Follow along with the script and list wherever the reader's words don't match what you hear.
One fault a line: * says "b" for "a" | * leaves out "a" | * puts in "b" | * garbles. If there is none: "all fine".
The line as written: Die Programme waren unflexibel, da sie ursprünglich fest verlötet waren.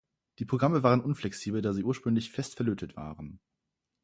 all fine